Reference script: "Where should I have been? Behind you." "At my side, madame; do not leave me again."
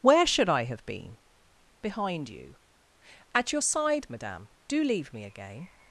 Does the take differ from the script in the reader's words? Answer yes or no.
yes